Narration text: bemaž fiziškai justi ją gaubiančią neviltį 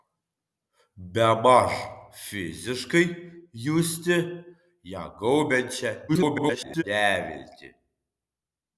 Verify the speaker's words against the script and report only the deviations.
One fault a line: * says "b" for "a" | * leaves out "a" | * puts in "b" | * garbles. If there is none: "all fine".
* garbles